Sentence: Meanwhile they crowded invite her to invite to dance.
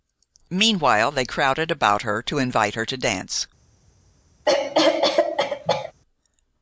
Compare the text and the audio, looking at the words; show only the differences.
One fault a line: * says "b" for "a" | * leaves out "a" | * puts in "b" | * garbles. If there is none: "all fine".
* says "about" for "invite"
* puts in "her"